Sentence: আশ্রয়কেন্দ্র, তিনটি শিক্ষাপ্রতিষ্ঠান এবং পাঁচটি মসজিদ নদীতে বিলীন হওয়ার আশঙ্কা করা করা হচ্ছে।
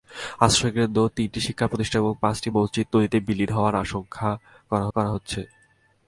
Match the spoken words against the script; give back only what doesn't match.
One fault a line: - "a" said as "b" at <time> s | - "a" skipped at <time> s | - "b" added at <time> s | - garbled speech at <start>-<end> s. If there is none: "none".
none